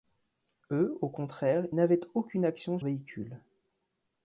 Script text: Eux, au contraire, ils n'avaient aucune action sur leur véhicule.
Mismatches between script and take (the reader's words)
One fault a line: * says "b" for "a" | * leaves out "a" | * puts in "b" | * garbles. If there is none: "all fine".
* leaves out "ils"
* leaves out "sur leur"